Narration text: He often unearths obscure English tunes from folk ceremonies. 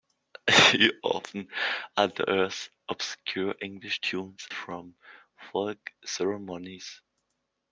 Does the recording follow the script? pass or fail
pass